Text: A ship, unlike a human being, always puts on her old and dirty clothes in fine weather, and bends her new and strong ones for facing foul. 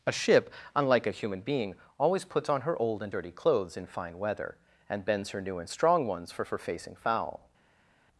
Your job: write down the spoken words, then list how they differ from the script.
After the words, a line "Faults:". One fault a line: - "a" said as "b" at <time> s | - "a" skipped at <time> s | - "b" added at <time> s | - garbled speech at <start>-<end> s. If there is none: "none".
A ship, unlike a human being, always puts on her old and dirty clothes in fine weather, and bends her new and strong ones for for facing foul.
Faults:
- "for" added at 6.4 s